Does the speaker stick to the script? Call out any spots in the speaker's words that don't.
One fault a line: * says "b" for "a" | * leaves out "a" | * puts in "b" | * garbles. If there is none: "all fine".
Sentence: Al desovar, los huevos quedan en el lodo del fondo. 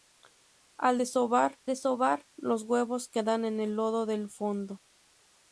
* puts in "desovar"